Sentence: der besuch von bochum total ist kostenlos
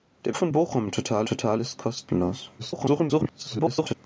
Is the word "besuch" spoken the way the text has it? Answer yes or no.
no